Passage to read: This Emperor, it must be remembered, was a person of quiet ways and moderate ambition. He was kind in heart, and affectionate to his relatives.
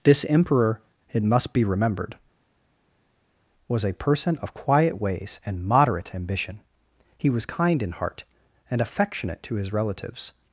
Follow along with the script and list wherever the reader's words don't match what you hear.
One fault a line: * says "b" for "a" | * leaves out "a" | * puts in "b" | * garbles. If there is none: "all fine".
all fine